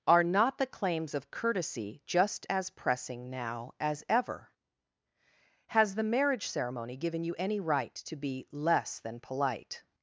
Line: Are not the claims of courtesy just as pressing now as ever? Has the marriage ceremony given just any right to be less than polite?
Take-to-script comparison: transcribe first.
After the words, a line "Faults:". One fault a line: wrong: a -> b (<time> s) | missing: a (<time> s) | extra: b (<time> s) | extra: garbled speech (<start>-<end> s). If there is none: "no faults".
Are not the claims of courtesy just as pressing now as ever? Has the marriage ceremony given you any right to be less than polite?
Faults:
wrong: just -> you (7.2 s)